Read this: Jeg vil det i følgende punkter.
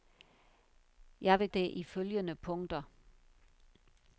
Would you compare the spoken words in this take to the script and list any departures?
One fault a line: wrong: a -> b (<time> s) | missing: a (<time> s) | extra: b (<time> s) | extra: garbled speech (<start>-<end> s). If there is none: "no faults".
no faults